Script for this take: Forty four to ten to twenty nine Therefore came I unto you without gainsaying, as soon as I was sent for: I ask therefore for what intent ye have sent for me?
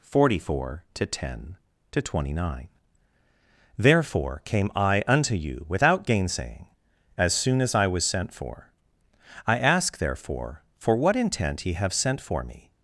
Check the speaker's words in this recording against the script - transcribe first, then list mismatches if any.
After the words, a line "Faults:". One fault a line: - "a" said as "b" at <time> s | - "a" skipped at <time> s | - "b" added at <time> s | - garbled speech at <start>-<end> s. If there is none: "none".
Forty four to ten to twenty nine Therefore came I unto you without gainsaying, as soon as I was sent for: I ask therefore for what intent ye have sent for me?
Faults:
none